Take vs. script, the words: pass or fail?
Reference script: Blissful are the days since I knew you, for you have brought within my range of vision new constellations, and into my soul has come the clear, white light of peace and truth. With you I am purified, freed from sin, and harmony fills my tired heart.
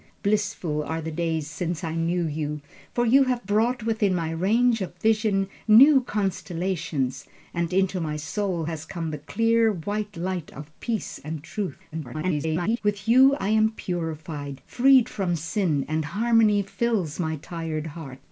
fail